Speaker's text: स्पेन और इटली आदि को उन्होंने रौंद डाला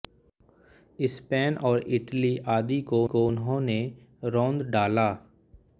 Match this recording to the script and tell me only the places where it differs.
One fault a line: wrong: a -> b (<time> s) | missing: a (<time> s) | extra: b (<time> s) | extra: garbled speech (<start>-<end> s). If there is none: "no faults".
extra: को (3.1 s)